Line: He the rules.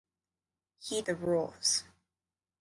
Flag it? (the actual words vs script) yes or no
no